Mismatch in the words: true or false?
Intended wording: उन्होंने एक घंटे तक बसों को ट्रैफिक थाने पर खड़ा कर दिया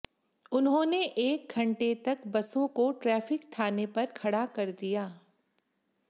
false